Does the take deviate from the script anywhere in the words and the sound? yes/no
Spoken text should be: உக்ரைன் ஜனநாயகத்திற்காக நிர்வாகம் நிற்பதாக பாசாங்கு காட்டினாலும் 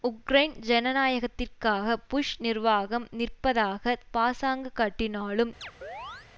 yes